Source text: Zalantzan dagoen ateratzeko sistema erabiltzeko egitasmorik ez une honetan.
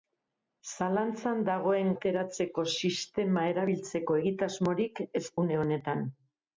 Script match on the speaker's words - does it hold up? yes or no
yes